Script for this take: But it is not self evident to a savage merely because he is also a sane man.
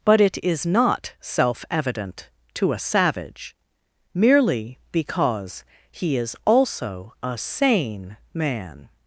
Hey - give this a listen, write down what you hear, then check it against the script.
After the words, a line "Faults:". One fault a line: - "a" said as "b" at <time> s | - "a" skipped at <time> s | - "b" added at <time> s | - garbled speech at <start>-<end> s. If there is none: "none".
But it is not self evident to a savage merely because he is also a sane man.
Faults:
none